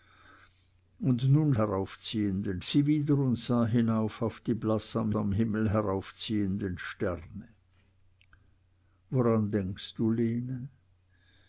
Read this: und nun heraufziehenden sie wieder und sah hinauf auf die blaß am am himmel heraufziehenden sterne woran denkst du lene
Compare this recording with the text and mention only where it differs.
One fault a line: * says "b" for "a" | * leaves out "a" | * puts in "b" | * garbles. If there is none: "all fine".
all fine